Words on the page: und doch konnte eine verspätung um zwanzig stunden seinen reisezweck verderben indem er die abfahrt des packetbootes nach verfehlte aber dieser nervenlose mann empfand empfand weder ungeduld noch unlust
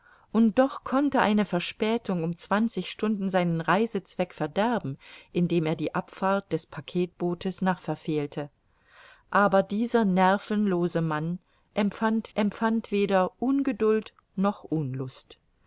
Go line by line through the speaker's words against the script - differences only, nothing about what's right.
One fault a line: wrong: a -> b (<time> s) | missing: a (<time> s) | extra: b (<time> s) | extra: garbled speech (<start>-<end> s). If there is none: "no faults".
no faults